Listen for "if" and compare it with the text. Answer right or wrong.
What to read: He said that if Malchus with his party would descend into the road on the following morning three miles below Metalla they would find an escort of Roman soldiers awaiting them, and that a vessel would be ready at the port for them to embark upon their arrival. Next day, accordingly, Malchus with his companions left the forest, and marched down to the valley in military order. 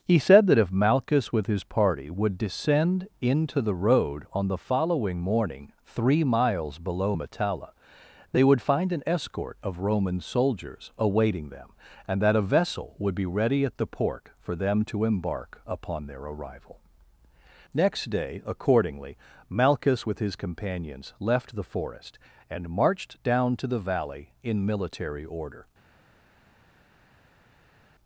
right